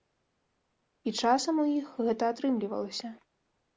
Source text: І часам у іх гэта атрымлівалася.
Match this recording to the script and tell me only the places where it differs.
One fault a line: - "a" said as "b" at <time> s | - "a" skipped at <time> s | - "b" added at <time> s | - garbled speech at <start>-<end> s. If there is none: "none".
none